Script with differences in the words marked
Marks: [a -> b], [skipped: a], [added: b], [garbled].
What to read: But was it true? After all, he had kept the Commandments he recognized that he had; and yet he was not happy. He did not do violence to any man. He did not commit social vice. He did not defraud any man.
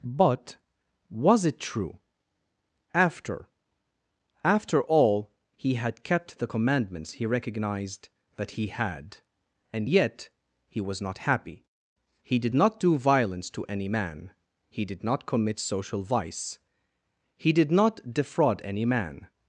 But was it true? After [added: After] all, he had kept the Commandments he recognized that he had; and yet he was not happy. He did not do violence to any man. He did not commit social vice. He did not defraud any man.